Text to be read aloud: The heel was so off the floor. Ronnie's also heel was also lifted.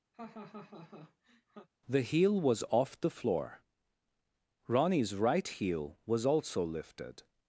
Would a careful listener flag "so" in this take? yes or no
yes